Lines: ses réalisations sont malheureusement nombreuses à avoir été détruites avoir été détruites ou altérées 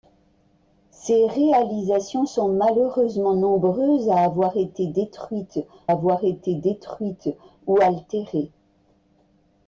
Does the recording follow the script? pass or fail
pass